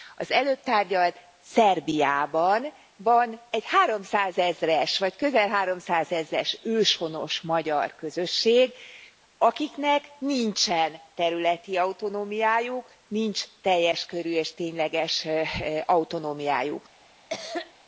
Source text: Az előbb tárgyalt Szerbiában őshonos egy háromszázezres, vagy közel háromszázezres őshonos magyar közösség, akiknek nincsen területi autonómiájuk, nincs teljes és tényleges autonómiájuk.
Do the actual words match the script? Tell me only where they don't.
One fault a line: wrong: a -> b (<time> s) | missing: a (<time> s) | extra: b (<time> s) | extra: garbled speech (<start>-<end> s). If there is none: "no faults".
wrong: őshonos -> van (3.0 s)
extra: körű (14.1 s)